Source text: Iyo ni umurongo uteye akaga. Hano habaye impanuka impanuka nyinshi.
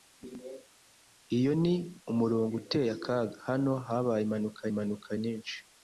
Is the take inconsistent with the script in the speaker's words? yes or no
no